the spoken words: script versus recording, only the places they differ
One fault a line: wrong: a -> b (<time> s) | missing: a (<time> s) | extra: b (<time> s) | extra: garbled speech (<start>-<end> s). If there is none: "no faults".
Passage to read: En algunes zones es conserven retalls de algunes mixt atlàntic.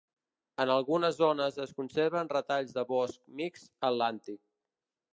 wrong: algunes -> bosc (3.0 s)